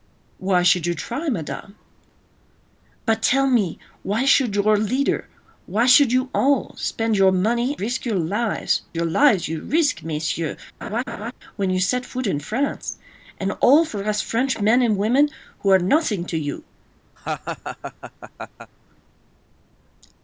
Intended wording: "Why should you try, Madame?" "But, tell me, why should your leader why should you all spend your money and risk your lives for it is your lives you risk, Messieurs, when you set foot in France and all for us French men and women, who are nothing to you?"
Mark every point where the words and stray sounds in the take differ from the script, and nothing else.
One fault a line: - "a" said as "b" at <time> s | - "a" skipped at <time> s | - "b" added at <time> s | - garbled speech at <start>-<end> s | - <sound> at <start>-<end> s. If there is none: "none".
- "and" skipped at 7.7 s
- "for it is" skipped at 8.8 s
- laugh at 10.8-11.3 s
- laugh at 17.2-18.7 s